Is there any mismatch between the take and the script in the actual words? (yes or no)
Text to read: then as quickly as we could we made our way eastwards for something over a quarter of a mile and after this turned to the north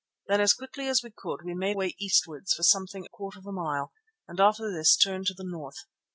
yes